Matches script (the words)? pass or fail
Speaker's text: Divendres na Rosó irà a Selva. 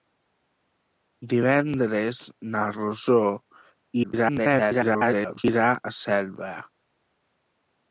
fail